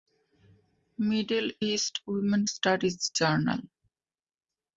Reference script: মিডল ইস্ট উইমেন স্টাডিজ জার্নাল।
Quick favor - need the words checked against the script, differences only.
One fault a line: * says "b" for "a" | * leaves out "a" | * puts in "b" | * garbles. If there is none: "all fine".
all fine